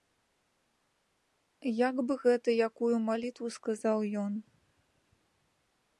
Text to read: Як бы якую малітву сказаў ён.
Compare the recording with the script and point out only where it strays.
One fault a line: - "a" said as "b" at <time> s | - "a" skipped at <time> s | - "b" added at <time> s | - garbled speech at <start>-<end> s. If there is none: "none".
- "гэта" added at 2.2 s